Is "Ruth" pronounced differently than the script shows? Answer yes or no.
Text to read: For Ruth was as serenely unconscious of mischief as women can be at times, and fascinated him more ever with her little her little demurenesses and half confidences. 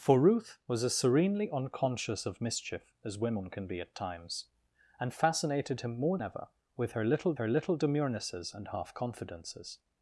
no